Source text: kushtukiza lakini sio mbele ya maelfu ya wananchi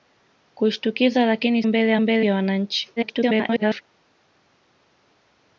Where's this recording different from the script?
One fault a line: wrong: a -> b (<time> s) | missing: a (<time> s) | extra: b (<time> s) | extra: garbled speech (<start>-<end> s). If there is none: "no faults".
missing: sio (1.6 s)
wrong: maelfu -> mbele (2.0 s)
extra: garbled speech (3.0-3.8 s)